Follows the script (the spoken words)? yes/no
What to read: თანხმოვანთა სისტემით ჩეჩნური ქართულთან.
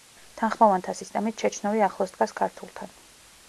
no